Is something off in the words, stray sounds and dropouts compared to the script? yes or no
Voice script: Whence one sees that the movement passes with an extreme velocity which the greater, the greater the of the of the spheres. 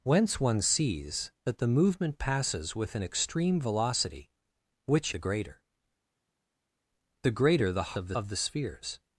no